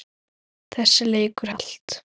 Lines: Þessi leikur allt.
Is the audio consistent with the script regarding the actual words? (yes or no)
yes